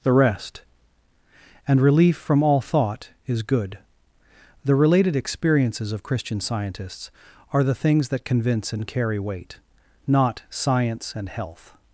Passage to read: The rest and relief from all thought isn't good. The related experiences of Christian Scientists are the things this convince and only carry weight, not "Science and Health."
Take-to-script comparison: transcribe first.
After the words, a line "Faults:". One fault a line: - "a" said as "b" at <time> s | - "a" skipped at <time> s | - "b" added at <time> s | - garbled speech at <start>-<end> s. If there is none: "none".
The rest and relief from all thought is good. The related experiences of Christian Scientists are the things that convince and carry weight, not "Science and Health."
Faults:
- "isn't" said as "is" at 3.3 s
- "this" said as "that" at 8.1 s
- "only" skipped at 8.9 s